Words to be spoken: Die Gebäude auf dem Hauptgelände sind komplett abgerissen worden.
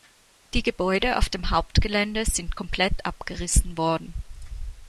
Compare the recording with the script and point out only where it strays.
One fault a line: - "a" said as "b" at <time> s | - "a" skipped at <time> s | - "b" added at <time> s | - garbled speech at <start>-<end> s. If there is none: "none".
none